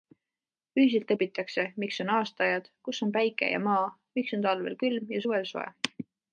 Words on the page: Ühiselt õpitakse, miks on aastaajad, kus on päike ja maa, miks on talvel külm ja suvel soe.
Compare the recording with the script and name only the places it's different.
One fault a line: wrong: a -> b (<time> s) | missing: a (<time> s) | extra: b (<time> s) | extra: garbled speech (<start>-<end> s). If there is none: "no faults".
no faults